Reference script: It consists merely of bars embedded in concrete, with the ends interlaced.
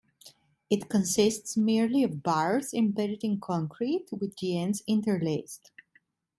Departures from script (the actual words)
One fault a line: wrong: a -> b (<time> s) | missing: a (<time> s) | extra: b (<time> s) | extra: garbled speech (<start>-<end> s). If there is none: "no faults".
no faults